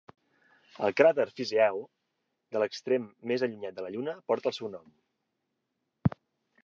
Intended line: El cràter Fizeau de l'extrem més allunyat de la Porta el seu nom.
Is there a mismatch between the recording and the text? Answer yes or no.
yes